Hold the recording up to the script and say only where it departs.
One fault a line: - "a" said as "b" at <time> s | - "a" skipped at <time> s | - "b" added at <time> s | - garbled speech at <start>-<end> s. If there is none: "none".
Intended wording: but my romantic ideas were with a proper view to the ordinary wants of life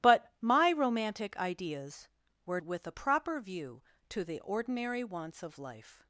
none